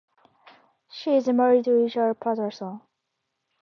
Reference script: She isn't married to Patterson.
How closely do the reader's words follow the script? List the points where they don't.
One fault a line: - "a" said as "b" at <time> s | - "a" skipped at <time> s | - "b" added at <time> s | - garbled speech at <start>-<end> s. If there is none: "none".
- "isn't" said as "is" at 1.1 s
- "Richard" added at 1.7 s